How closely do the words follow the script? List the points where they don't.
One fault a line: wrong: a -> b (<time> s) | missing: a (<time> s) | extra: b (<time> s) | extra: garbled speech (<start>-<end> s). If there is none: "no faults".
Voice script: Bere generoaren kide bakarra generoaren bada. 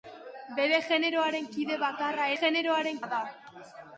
no faults